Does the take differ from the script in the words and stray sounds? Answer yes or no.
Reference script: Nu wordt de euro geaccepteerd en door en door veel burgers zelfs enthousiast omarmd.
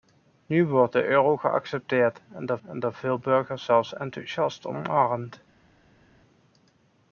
no